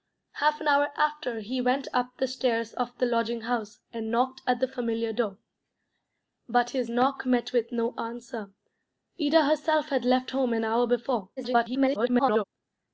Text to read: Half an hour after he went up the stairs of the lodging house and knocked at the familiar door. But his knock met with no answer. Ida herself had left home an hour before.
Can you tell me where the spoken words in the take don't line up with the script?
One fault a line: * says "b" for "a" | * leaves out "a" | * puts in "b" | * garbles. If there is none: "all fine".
* garbles